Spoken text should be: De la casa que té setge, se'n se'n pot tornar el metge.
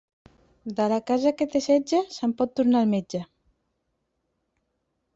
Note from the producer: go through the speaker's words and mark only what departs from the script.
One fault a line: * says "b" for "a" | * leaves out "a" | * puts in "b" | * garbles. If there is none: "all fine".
* leaves out "se'n"